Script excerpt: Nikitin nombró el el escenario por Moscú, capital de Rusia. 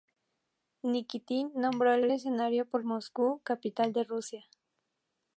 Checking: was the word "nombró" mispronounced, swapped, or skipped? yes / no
no